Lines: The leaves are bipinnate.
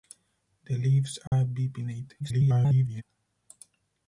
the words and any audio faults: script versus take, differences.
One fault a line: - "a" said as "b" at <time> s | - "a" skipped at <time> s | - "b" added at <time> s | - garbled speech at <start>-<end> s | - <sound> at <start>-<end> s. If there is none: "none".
- dropout at 1.3-1.3 s
- garbled speech at 2.2-3.0 s